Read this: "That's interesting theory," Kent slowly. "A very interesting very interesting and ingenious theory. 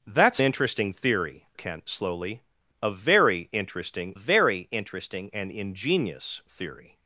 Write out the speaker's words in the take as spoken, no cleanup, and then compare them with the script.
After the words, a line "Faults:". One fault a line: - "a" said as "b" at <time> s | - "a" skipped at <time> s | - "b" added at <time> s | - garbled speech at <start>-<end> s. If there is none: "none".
"That's interesting theory," Kent slowly. "A very interesting very interesting and ingenious theory.
Faults:
none